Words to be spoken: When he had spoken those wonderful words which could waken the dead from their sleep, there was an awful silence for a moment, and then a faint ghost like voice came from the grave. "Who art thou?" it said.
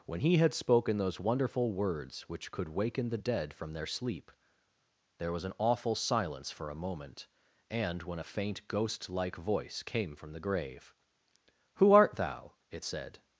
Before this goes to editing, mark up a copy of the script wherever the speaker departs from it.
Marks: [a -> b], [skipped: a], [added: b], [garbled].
When he had spoken those wonderful words which could waken the dead from their sleep, there was an awful silence for a moment, and [then -> when] a faint ghost like voice came from the grave. "Who art thou?" it said.